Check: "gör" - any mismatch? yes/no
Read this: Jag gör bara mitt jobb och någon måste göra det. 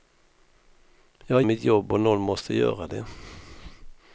yes